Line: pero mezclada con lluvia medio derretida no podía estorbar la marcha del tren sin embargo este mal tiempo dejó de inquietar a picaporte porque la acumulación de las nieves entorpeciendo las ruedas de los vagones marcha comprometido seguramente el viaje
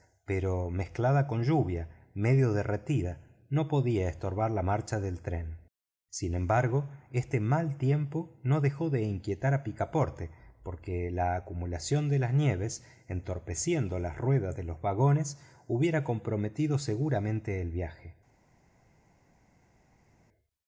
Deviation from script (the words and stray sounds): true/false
true